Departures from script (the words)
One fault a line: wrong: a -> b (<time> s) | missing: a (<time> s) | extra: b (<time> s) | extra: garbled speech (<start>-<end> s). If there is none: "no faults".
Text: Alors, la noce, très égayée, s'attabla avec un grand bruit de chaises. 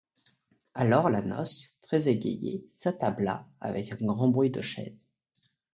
no faults